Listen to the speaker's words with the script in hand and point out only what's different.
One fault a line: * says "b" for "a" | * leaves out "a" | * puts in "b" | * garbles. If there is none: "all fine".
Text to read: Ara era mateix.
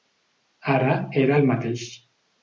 * puts in "el"